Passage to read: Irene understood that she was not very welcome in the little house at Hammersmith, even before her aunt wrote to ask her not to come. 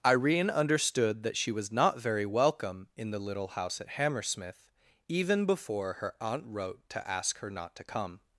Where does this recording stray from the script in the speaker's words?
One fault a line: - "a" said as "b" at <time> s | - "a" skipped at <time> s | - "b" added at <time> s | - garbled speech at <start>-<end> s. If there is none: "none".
none